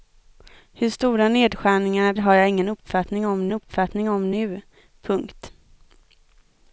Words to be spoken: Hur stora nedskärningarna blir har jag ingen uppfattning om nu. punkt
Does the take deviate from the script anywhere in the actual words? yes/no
yes